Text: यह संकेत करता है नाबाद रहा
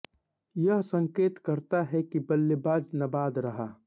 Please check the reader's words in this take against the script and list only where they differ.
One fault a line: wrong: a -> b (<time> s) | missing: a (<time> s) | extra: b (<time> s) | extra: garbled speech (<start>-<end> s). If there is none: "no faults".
extra: कि बल्लेबाज (2.0 s)